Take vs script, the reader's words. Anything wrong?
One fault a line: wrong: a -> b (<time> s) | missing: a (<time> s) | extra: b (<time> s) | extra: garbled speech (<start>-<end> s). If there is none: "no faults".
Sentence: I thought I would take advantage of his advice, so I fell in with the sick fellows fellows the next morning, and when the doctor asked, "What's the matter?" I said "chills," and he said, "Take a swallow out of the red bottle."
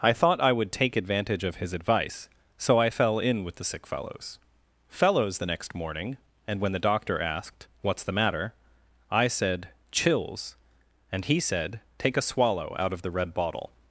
no faults